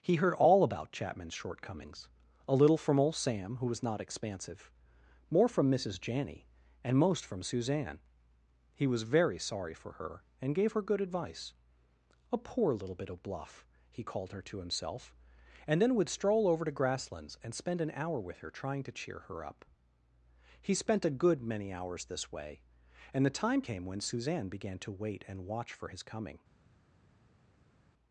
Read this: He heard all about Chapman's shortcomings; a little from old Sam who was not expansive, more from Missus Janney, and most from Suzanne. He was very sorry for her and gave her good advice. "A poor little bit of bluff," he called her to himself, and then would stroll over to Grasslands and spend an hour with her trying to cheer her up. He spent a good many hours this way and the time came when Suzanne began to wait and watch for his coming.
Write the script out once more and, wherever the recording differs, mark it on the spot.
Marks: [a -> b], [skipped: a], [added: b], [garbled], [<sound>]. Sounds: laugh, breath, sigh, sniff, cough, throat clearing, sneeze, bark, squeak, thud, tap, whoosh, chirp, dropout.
He heard all about Chapman's shortcomings; a little from old Sam who was not expansive, more from Missus Janney, and most from Suzanne. He was very sorry for her and gave her good advice. "A poor little bit of bluff," he called her to himself, and then would stroll over to Grasslands and spend an hour with her trying to cheer her up. He spent a good many hours this way and the time came when Suzanne began to wait and watch for his coming.